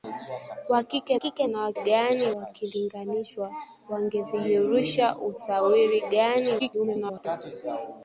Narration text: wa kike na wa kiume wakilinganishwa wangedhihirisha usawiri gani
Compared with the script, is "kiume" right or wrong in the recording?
wrong